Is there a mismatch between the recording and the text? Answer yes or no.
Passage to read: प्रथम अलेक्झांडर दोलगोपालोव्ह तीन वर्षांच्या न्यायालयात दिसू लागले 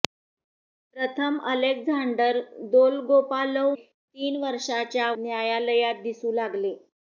no